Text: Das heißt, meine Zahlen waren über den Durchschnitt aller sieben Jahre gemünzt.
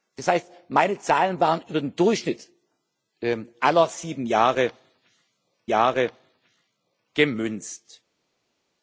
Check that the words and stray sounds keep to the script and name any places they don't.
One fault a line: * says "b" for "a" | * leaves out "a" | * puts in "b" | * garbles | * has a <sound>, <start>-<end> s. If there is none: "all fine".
* puts in "Jahre"